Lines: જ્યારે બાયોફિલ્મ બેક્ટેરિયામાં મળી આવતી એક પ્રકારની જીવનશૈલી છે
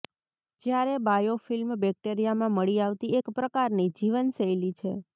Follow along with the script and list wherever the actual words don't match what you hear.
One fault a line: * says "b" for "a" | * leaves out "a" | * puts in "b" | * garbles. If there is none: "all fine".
all fine